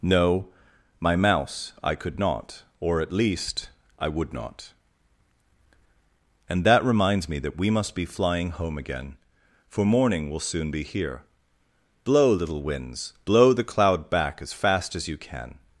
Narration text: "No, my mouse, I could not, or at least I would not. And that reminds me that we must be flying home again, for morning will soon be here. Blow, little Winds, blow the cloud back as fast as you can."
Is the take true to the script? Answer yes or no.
yes